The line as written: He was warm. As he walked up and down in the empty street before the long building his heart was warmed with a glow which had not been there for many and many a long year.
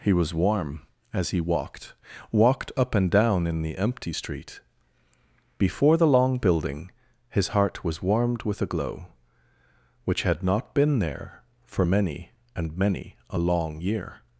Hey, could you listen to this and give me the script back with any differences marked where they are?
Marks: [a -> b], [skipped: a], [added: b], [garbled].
He was warm. As he walked [added: walked] up and down in the empty street before the long building his heart was warmed with a glow which had not been there for many and many a long year.